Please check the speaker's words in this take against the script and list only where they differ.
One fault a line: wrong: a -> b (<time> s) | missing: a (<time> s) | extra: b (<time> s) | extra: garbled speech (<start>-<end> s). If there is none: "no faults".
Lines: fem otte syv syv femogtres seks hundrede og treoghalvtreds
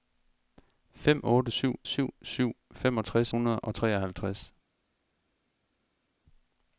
extra: syv (2.2 s)
missing: seks (3.3 s)